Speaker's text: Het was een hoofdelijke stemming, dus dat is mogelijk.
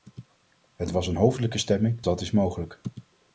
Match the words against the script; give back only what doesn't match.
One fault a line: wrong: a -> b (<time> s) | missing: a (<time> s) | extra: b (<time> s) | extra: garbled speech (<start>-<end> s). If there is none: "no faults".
missing: dus (2.0 s)